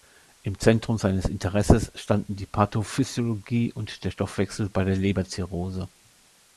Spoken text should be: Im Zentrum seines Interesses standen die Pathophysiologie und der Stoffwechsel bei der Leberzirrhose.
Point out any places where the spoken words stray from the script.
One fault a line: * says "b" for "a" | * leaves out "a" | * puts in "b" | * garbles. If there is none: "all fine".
all fine